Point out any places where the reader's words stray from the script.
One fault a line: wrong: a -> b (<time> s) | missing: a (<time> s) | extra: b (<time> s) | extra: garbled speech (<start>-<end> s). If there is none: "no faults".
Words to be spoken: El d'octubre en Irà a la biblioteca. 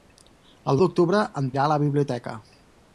no faults